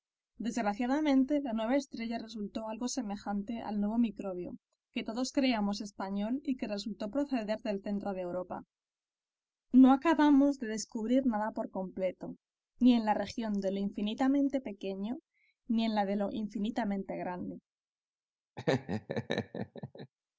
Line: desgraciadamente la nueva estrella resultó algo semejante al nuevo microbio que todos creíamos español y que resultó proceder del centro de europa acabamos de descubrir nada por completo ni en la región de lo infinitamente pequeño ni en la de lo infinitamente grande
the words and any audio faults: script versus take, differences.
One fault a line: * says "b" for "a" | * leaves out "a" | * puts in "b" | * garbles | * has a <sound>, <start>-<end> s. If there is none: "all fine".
* puts in "no"
* has a laugh, 18.6-20.1 s